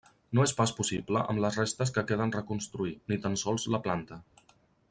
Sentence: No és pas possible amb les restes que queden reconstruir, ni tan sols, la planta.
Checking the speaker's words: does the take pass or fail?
pass